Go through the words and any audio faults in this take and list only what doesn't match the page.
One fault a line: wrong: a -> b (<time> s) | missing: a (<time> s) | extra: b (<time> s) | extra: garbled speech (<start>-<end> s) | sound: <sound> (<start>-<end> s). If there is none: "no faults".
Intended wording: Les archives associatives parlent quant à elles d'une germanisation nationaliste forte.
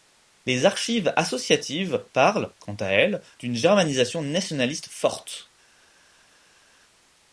no faults